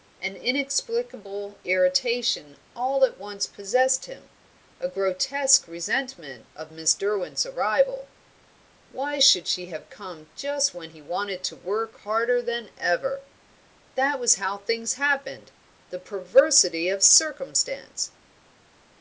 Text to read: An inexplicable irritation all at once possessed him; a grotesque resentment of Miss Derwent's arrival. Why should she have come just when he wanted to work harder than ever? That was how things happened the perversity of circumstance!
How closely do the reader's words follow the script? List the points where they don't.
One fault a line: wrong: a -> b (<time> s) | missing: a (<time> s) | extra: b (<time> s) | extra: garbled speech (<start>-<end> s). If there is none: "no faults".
no faults